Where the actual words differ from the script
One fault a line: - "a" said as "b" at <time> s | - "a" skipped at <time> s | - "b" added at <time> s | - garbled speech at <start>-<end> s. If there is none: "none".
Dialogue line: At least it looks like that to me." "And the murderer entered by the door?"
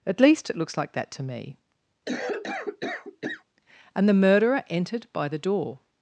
none